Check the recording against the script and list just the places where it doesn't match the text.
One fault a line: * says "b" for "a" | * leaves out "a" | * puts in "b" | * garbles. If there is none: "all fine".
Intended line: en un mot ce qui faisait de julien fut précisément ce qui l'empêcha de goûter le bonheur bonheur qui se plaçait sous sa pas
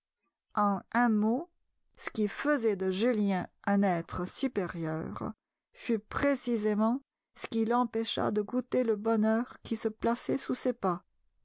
* puts in "un être supérieur"
* leaves out "bonheur"
* says "ses" for "sa"